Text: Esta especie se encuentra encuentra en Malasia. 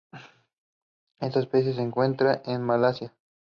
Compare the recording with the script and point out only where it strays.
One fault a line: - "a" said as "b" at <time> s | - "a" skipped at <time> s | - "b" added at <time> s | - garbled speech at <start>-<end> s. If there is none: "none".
- "encuentra" skipped at 2.4 s